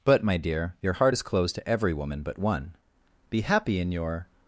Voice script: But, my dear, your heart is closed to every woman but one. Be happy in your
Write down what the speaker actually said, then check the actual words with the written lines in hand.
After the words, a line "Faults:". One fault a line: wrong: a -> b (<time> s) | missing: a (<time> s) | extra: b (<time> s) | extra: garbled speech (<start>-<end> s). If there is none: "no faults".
But, my dear, your heart is closed to every woman but one. Be happy in your
Faults:
no faults